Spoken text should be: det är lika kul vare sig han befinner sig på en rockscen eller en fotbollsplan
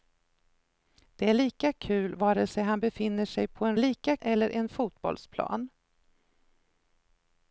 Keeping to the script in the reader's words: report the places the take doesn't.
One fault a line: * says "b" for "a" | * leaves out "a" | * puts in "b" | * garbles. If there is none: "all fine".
* says "lika" for "rockscen"